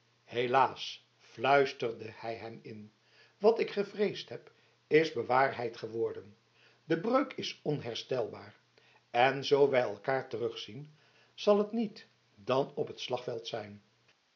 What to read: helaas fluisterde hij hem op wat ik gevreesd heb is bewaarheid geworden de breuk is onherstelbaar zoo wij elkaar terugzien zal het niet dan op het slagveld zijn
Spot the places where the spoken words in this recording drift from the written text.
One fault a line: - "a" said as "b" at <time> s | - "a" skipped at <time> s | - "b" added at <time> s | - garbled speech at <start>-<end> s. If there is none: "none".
- "op" said as "in" at 2.6 s
- "en" added at 9.1 s